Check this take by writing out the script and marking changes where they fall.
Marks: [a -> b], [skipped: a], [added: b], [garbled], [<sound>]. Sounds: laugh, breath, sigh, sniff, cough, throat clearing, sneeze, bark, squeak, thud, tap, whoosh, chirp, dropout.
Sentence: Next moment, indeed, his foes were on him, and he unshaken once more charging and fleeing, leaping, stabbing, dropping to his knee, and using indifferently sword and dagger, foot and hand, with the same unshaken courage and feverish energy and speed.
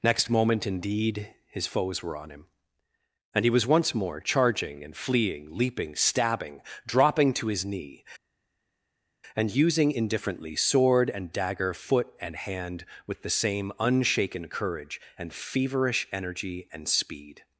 Next moment, indeed, his foes were on him, and he [unshaken -> was] once more charging and fleeing, leaping, stabbing, dropping to his knee, and using indifferently sword and dagger, foot and hand, with the same unshaken courage and feverish energy and speed.